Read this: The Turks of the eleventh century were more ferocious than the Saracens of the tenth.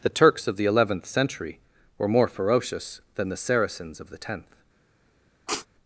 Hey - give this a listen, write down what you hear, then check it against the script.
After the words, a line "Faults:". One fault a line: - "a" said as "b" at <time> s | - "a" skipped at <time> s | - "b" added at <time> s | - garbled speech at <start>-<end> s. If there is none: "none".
The Turks of the eleventh century were more ferocious than the Saracens of the tenth.
Faults:
none